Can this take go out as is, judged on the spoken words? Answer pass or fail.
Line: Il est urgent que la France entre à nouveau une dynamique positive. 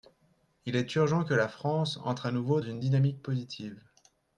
pass